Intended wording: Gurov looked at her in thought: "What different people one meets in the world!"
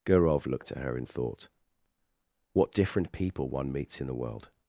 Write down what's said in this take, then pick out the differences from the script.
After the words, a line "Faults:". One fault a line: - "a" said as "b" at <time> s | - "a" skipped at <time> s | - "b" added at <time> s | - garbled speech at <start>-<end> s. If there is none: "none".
Gurov looked at her in thought: "What different people one meets in the world!"
Faults:
none